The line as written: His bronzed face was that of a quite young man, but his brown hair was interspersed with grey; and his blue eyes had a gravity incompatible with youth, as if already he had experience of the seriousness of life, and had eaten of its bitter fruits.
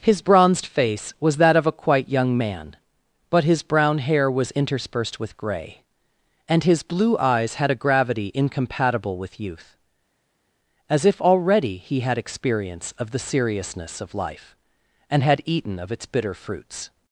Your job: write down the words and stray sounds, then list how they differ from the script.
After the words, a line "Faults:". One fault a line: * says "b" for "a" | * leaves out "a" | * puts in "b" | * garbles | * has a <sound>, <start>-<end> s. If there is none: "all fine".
His bronzed face was that of a quite young man, but his brown hair was interspersed with grey; and his blue eyes had a gravity incompatible with youth, as if already he had experience of the seriousness of life, and had eaten of its bitter fruits.
Faults:
all fine